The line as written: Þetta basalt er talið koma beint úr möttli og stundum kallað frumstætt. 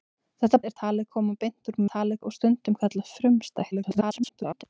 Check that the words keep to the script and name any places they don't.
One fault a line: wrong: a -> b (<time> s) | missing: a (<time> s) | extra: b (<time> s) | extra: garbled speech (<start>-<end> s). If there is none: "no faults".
missing: basalt (0.6 s)
wrong: möttli -> talið (1.9 s)
extra: garbled speech (3.7-4.6 s)